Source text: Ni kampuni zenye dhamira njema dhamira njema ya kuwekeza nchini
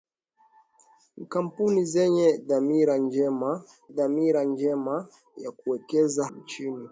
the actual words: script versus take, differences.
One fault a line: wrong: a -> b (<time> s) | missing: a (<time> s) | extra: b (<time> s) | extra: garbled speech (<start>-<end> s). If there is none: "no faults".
no faults